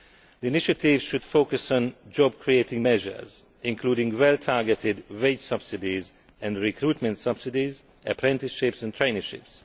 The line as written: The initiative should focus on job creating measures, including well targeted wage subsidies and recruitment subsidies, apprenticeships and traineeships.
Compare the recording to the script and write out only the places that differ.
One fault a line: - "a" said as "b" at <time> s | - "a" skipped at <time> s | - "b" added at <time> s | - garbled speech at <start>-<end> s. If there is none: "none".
none